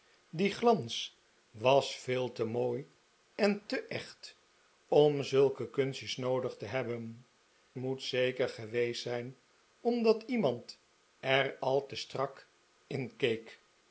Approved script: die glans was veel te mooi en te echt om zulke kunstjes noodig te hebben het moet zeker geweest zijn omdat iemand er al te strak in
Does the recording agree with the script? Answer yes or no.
no